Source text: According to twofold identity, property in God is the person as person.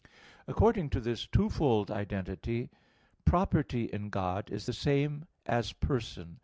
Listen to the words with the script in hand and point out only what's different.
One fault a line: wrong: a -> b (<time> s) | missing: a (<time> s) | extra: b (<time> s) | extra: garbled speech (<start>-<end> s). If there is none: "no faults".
extra: this (1.0 s)
wrong: person -> same (4.7 s)